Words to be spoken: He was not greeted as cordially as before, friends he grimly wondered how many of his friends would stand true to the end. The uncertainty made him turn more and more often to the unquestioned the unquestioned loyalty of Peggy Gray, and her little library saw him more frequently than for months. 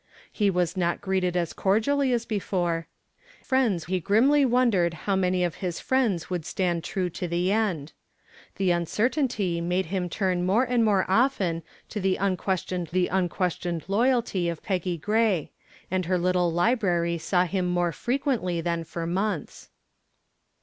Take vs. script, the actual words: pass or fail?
pass